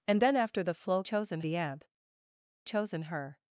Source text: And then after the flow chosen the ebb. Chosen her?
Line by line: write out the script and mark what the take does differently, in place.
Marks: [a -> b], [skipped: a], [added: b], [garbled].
And then after the flow chosen the ebb. Chosen her?